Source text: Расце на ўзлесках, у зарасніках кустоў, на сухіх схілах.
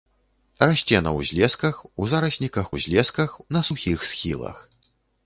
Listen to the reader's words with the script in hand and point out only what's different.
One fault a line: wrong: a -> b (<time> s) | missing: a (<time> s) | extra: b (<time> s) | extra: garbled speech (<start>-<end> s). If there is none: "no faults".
wrong: кустоў -> ўзлесках (2.7 s)